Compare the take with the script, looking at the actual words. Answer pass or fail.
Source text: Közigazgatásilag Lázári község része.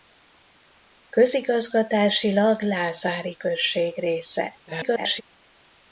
fail